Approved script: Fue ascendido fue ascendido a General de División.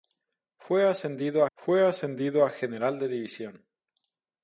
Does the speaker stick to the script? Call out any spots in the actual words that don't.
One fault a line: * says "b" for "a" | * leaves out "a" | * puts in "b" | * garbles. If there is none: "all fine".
all fine